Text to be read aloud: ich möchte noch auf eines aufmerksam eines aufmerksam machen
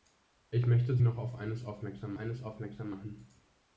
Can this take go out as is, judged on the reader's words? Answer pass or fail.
pass